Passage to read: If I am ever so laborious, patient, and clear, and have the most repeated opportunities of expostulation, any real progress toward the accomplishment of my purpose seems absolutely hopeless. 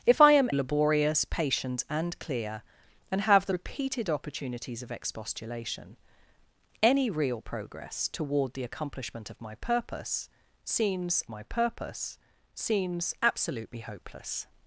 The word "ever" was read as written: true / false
false